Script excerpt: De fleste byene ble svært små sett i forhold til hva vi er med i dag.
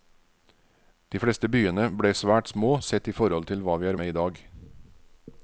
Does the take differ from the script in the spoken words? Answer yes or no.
no